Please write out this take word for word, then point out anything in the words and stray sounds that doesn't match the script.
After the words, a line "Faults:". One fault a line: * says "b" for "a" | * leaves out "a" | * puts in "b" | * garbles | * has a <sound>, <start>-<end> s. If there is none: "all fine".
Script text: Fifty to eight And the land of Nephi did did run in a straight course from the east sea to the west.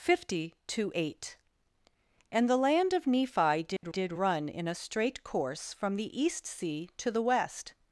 Fifty to eight And the land of Nephi did did run in a straight course from the east sea to the west.
Faults:
* has a dropout, 3.8-3.8 s